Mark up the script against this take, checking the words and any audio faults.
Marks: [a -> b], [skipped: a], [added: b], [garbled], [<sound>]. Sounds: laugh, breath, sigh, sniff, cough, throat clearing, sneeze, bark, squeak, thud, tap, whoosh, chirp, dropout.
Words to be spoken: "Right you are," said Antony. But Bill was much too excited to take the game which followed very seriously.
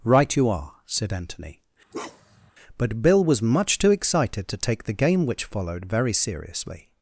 "Right you are," said Antony. [bark] But Bill was much too excited to take the game which followed very seriously.